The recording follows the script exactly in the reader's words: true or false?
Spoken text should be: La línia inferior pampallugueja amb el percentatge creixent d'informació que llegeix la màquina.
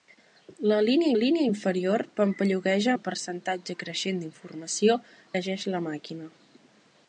false